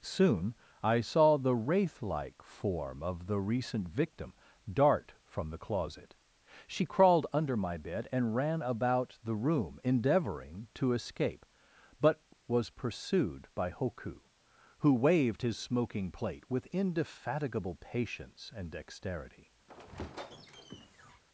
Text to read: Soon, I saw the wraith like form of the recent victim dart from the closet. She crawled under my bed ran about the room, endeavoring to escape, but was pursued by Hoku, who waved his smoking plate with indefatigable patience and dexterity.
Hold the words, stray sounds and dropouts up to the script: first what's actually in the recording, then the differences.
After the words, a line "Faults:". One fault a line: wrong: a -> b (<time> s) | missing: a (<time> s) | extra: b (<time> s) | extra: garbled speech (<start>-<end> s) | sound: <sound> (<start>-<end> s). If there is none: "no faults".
Soon, I saw the wraith like form of the recent victim dart from the closet. She crawled under my bed and ran about the room, endeavoring to escape, but was pursued by Hoku, who waved his smoking plate with indefatigable patience and dexterity.
Faults:
extra: and (8.1 s)
sound: squeak (19.7-21.2 s)